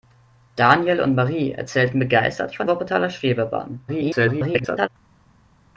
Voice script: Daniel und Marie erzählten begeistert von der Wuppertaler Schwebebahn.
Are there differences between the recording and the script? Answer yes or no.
yes